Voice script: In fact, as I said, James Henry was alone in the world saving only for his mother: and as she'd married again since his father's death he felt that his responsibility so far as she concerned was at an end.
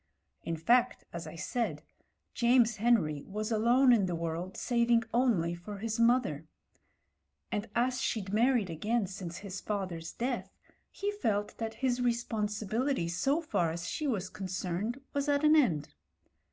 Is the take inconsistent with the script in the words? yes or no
yes